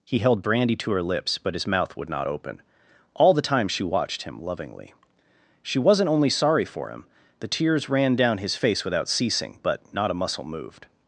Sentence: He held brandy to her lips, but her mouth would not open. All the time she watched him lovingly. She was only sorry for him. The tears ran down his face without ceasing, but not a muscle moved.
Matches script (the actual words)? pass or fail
fail